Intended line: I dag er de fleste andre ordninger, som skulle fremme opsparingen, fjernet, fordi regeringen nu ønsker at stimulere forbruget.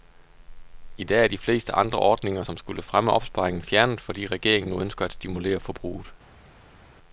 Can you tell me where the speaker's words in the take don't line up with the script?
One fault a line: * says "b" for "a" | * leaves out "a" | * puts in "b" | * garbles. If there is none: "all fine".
all fine